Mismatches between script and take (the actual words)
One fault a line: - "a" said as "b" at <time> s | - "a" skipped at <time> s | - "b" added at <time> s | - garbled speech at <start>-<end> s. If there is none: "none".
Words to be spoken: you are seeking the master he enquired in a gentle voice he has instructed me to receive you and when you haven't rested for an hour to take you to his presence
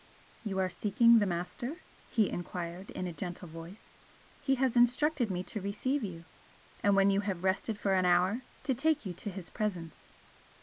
- "haven't" said as "have" at 7.2 s